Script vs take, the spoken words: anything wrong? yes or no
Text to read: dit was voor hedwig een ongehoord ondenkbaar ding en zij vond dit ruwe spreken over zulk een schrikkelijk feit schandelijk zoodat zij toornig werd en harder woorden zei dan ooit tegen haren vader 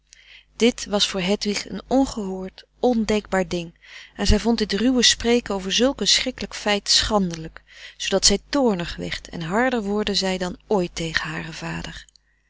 no